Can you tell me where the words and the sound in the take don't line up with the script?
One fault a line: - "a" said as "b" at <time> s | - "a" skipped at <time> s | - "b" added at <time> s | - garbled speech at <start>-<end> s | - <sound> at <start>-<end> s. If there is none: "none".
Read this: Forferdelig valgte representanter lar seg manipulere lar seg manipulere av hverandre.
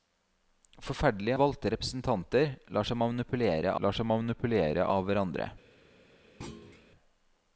- thud at 6.4-6.9 s